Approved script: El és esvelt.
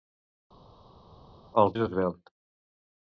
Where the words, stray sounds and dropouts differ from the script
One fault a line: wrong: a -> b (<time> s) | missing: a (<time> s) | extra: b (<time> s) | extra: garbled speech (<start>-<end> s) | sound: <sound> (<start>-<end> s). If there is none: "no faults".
no faults